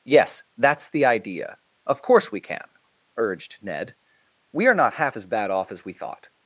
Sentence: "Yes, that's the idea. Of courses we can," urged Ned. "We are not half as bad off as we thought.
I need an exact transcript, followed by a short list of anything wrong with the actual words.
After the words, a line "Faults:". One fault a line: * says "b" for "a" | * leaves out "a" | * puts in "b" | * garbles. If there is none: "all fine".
"Yes, that's the idea. Of course we can," urged Ned. "We are not half as bad off as we thought.
Faults:
* says "course" for "courses"